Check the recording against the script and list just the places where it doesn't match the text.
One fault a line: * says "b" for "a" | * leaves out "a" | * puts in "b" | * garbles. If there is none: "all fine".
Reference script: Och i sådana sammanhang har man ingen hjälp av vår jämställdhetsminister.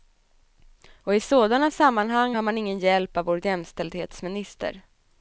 all fine